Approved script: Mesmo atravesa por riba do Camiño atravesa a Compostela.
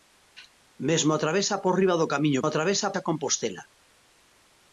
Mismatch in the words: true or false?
false